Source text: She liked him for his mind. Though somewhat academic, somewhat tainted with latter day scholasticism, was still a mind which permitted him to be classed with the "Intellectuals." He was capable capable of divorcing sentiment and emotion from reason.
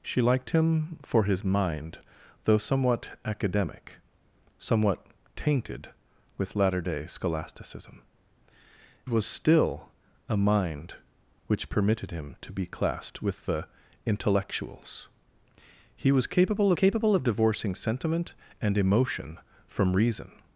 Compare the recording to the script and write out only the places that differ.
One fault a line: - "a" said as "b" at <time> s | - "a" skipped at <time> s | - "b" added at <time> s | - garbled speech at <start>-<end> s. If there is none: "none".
none